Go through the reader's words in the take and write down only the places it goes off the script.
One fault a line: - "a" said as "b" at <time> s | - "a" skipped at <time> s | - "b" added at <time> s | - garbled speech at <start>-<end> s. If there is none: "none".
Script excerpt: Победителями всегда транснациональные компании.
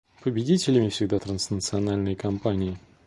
none